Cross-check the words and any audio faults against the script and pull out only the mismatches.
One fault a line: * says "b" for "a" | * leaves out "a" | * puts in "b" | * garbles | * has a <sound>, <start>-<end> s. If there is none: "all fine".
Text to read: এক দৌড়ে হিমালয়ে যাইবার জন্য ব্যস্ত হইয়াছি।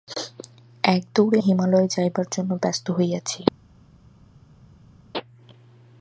all fine